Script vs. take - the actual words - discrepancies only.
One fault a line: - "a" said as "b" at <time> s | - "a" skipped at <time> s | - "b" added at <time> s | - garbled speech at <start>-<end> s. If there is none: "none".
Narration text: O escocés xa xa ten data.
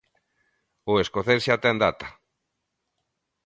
- "xa" skipped at 1.6 s